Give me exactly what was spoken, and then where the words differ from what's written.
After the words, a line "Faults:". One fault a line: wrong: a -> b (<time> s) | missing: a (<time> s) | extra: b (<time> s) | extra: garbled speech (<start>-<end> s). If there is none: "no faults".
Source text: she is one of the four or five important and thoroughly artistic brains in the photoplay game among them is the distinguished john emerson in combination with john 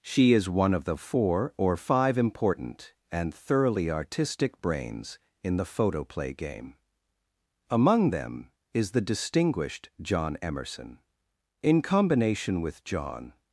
she is one of the four or five important and thoroughly artistic brains in the photoplay game among them is the distinguished john emerson in combination with john
Faults:
no faults